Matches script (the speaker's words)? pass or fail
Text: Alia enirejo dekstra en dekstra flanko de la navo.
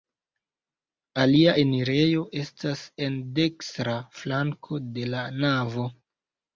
fail